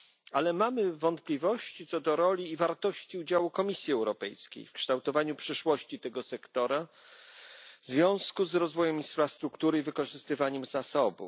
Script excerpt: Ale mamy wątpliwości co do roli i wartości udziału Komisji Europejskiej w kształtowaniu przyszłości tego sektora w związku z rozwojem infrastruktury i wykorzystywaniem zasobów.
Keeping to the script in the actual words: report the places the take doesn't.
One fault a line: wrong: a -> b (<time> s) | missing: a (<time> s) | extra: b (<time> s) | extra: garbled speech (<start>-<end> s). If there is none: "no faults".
no faults